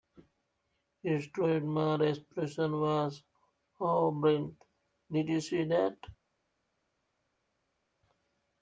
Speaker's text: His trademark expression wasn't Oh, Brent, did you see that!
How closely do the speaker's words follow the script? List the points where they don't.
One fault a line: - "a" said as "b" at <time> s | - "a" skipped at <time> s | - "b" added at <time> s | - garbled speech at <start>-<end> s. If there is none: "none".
- "wasn't" said as "was" at 2.8 s